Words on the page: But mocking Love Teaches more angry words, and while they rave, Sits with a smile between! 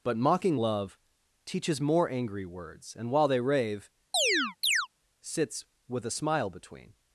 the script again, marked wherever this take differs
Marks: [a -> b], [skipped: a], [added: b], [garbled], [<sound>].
But mocking Love Teaches more angry words, and while they rave, [chirp] Sits with a smile between!